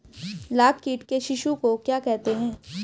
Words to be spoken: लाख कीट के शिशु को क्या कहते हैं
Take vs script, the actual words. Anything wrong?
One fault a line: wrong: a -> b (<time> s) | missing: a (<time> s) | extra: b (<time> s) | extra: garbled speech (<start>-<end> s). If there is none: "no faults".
no faults